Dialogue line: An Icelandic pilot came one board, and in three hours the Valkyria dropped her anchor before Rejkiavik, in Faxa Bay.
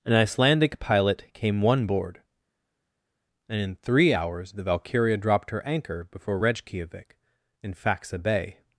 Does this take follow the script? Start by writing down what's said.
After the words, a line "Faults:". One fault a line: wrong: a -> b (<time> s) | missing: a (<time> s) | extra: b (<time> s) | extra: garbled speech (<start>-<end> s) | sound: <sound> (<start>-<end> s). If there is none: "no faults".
An Icelandic pilot came one board, and in three hours the Valkyria dropped her anchor before Rejkiavik, in Faxa Bay.
Faults:
no faults